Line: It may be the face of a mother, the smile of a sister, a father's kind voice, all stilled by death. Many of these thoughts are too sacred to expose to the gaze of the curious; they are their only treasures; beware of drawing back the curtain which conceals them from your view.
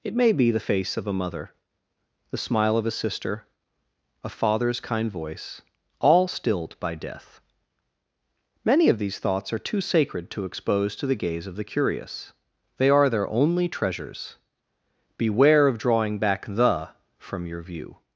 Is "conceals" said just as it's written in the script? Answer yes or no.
no